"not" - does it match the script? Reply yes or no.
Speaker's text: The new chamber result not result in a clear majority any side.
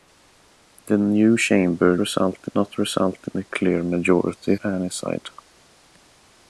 yes